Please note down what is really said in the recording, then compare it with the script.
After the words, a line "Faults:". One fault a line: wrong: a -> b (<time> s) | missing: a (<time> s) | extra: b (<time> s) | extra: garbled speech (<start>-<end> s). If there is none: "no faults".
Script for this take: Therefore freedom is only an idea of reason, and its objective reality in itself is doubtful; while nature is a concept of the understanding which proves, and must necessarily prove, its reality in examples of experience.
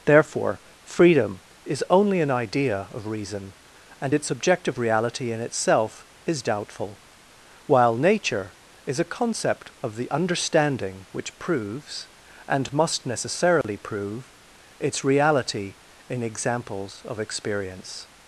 Therefore freedom is only an idea of reason, and its objective reality in itself is doubtful; while nature is a concept of the understanding which proves, and must necessarily prove, its reality in examples of experience.
Faults:
no faults